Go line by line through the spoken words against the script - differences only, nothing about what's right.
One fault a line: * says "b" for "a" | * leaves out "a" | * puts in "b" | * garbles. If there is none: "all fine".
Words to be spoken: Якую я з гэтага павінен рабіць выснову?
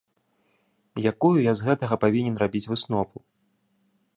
all fine